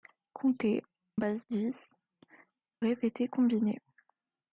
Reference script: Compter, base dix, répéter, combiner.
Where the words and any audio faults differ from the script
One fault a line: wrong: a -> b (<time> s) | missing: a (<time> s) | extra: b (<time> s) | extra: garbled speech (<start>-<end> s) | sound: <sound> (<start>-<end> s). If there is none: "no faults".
no faults